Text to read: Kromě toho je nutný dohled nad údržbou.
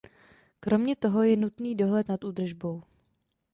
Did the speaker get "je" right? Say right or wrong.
right